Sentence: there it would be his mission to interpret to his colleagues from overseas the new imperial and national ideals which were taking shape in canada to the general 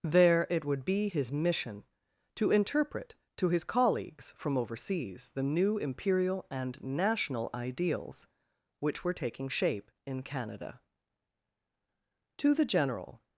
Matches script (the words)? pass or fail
pass